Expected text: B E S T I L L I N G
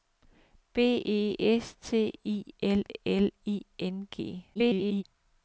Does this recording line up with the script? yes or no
no